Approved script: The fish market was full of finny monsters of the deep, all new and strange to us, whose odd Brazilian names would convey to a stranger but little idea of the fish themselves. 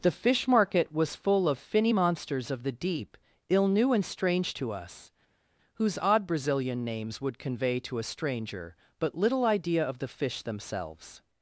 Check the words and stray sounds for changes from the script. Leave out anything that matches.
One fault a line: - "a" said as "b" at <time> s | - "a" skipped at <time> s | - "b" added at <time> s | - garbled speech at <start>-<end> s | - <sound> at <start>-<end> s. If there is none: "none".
- "all" said as "ill" at 3.5 s